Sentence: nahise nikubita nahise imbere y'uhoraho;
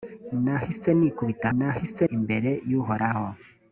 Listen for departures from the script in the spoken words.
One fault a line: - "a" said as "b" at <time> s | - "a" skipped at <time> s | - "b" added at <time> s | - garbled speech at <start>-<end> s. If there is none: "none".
none